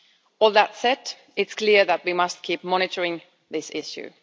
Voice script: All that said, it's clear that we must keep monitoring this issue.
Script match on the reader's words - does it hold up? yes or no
yes